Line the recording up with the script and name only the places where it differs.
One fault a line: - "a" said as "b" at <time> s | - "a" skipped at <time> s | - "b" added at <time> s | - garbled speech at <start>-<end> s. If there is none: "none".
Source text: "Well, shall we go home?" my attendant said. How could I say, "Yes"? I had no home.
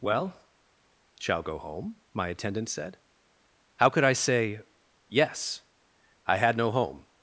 - "we" skipped at 1.4 s